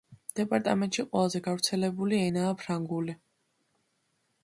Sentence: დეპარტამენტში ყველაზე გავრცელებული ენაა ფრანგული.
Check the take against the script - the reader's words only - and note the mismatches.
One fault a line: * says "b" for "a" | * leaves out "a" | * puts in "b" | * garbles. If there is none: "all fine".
all fine